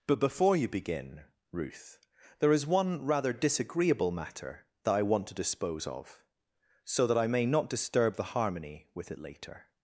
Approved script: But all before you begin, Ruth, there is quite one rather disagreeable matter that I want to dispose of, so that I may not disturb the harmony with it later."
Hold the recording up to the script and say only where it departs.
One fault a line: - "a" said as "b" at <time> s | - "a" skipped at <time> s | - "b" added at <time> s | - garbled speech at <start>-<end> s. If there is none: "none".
- "all" skipped at 0.2 s
- "quite" skipped at 2.6 s